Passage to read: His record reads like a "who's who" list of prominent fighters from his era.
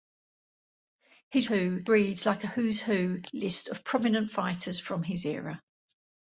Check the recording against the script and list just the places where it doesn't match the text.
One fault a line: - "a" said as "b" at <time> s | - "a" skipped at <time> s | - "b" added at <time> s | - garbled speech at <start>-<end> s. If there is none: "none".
- "record" said as "who" at 1.4 s